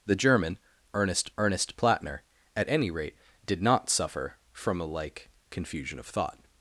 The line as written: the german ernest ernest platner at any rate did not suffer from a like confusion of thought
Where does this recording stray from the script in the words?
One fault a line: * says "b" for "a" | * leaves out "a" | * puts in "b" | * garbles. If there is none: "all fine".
all fine